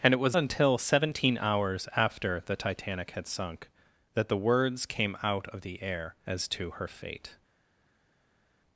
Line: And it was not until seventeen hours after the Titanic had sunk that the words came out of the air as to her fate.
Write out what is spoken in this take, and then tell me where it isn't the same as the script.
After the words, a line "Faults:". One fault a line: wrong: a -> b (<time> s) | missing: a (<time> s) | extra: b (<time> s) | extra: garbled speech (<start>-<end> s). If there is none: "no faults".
And it was until seventeen hours after the Titanic had sunk that the words came out of the air as to her fate.
Faults:
missing: not (0.4 s)